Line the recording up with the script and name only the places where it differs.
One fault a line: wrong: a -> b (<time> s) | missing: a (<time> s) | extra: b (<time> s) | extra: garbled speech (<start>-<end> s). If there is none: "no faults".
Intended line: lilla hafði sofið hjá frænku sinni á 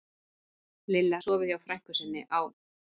missing: hafði (1.2 s)